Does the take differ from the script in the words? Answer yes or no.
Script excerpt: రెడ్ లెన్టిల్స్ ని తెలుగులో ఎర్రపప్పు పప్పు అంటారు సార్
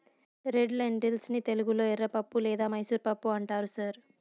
yes